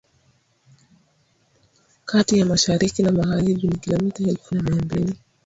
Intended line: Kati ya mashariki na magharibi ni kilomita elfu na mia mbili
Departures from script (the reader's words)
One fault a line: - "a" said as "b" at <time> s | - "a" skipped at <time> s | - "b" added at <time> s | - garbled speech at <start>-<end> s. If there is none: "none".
none